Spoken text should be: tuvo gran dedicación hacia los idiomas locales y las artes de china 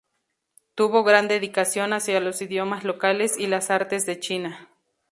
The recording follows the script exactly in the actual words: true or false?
true